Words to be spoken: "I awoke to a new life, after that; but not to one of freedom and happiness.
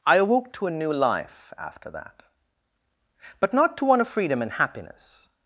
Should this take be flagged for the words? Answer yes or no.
no